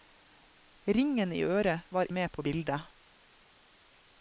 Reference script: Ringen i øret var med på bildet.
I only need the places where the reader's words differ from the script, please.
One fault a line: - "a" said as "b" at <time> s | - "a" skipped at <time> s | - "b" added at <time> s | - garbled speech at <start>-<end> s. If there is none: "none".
none